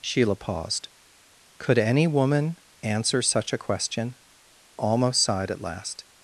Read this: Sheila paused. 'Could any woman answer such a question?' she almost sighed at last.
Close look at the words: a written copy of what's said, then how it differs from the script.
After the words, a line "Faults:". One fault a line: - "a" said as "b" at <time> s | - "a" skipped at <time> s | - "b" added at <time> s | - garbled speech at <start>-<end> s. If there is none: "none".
Sheila paused. 'Could any woman answer such a question?' almost sighed at last.
Faults:
- "she" skipped at 4.2 s